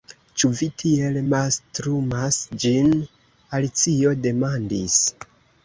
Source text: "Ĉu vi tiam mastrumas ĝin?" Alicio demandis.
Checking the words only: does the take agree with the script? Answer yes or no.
no